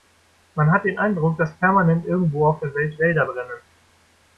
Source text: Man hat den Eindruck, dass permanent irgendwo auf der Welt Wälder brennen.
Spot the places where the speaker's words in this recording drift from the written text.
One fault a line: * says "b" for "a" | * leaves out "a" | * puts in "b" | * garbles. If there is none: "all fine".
all fine